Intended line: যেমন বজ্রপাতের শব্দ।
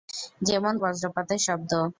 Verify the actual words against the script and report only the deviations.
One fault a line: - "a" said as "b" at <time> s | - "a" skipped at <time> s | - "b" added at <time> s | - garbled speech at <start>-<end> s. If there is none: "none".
none